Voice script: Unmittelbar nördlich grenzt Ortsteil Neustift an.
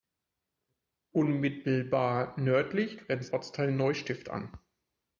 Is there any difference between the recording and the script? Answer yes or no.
no